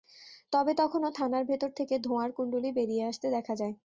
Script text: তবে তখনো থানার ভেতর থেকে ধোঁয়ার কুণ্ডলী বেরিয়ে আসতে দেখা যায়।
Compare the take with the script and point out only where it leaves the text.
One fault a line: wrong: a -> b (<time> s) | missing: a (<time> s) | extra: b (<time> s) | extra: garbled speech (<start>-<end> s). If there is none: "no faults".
no faults